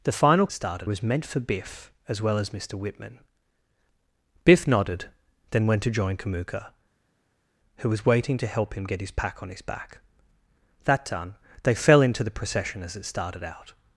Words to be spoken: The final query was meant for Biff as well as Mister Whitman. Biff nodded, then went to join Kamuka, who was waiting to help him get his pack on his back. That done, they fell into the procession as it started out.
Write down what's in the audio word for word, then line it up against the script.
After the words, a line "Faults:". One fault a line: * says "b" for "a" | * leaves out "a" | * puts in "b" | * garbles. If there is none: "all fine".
The final started was meant for Biff as well as Mister Whitman. Biff nodded, then went to join Kamuka, who was waiting to help him get his pack on his back. That done, they fell into the procession as it started out.
Faults:
* says "started" for "query"